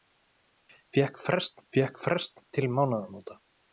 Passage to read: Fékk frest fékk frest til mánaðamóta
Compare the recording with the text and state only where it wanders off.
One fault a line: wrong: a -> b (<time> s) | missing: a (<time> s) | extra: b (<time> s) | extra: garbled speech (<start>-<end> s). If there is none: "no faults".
no faults